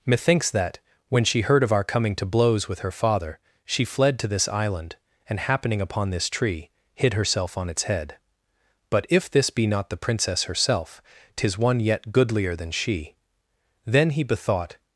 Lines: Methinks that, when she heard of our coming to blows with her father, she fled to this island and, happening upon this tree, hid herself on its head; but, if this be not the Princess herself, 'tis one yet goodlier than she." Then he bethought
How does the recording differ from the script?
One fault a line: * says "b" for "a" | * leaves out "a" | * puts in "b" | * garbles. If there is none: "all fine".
all fine